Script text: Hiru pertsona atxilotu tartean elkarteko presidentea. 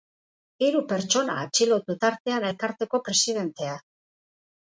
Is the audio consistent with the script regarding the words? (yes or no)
yes